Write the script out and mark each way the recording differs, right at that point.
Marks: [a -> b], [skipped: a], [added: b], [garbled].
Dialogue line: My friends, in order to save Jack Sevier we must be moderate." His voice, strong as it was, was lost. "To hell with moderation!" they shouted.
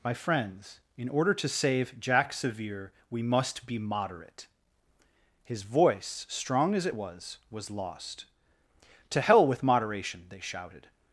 My friends, in order to save Jack Sevier we must be moderate." His voice, strong as it was, was lost. "To hell with moderation!" they shouted.